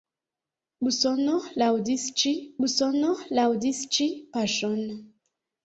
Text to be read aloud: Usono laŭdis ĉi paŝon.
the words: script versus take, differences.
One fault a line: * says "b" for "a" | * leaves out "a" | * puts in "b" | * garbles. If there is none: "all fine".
* puts in "usono laŭdis ĉi"